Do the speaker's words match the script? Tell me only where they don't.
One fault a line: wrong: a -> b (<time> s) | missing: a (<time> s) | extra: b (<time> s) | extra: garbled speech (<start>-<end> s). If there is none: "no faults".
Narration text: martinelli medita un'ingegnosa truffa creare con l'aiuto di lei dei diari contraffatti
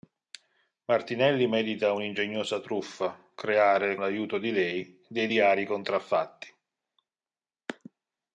missing: con (4.0 s)